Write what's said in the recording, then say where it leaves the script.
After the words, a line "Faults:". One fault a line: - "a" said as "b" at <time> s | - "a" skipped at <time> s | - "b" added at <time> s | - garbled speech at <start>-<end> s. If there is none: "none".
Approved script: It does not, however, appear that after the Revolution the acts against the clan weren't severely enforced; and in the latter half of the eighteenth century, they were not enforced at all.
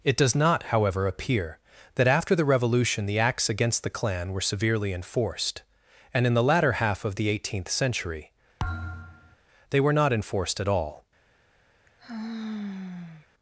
It does not, however, appear that after the Revolution the acts against the clan were severely enforced; and in the latter half of the eighteenth century, they were not enforced at all.
Faults:
- "weren't" said as "were" at 4.3 s